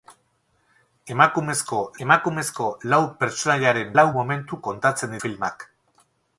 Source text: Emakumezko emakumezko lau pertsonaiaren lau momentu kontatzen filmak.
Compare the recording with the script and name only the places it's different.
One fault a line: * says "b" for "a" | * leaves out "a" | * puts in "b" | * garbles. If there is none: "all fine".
all fine